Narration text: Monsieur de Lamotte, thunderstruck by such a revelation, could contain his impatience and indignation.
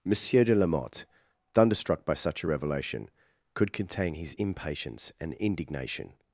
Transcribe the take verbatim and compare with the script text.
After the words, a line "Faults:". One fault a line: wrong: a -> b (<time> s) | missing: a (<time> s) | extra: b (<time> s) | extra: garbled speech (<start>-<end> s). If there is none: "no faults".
Monsieur de Lamotte, thunderstruck by such a revelation, could contain his impatience and indignation.
Faults:
no faults